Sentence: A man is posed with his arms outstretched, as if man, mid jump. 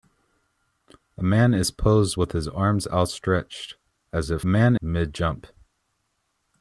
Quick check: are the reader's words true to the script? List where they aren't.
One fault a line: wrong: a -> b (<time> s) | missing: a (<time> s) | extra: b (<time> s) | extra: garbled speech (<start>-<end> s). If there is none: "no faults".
no faults